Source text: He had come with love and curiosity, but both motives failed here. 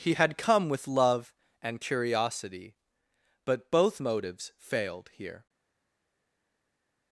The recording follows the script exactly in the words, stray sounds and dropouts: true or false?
true